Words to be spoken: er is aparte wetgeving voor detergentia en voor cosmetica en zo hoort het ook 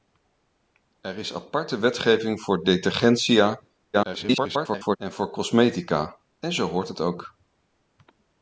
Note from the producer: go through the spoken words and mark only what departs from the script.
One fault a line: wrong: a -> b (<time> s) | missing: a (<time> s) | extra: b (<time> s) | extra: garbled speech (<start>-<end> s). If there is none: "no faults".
extra: garbled speech (3.9-5.0 s)